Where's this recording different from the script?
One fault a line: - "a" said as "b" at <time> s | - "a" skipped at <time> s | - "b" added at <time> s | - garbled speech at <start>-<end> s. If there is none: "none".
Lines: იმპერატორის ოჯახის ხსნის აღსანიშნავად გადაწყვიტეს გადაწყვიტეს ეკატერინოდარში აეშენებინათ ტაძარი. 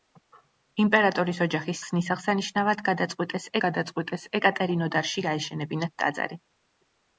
none